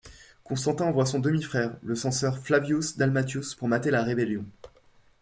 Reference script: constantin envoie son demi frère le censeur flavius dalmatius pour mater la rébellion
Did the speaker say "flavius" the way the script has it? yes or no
yes